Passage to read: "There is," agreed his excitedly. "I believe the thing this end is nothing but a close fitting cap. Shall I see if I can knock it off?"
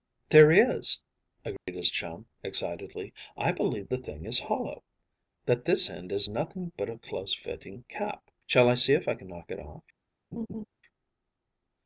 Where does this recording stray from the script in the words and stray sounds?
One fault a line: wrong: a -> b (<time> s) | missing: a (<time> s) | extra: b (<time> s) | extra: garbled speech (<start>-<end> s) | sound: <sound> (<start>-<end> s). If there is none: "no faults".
sound: dropout (1.6-1.7 s)
extra: chum (1.9 s)
extra: is hollow That (4.2 s)
sound: laugh (10.3-10.7 s)